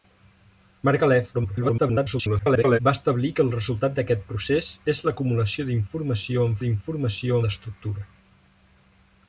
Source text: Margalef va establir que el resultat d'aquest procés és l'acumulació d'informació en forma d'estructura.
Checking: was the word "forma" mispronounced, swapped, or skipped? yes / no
yes